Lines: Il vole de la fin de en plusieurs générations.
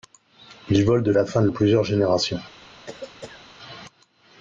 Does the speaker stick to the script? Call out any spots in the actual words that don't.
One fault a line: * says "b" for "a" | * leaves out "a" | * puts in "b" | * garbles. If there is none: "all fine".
all fine